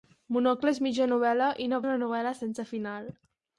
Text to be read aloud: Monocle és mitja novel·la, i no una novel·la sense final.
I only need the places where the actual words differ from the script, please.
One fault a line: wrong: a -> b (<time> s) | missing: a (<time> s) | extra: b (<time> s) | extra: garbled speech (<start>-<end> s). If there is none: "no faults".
no faults